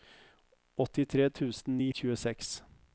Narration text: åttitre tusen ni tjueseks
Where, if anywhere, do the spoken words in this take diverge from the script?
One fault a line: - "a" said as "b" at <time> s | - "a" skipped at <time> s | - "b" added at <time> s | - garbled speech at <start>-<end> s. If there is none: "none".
none